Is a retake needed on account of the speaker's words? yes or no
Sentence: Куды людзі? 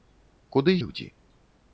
no